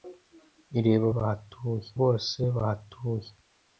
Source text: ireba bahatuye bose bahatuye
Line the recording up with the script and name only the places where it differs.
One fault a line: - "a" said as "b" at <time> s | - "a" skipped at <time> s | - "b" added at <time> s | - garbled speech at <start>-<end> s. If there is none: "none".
none